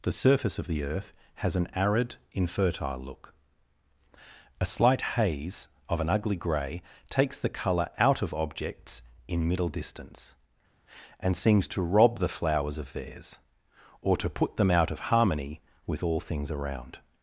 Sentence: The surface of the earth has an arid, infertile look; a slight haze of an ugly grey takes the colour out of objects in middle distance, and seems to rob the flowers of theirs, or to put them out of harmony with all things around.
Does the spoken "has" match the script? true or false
true